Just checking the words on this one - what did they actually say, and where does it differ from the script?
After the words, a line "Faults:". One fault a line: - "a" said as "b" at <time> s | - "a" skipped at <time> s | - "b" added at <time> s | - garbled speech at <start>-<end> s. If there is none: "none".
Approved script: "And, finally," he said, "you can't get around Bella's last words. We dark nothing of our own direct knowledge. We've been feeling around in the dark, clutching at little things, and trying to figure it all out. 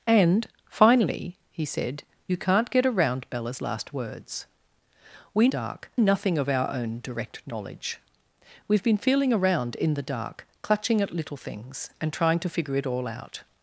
"And, finally," he said, "you can't get around Bella's last words. We dark nothing of our own direct knowledge. We've been feeling around in the dark, clutching at little things, and trying to figure it all out.
Faults:
none